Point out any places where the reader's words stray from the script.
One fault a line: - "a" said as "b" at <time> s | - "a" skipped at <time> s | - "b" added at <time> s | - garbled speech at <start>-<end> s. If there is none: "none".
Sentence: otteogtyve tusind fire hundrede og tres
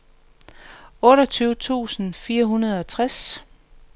none